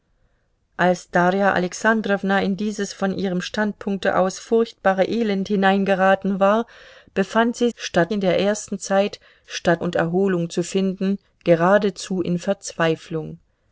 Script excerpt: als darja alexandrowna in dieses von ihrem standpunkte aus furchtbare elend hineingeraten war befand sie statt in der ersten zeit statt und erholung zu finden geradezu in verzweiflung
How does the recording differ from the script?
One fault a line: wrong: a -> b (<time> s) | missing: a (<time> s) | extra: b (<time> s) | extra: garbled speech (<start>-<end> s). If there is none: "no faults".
no faults